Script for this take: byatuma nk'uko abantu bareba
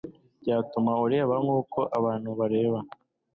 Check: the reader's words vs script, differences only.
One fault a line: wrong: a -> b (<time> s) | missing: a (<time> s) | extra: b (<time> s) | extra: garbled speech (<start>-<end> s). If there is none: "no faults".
extra: ureba (1.1 s)